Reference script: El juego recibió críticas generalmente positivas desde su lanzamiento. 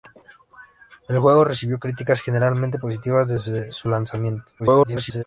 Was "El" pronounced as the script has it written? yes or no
yes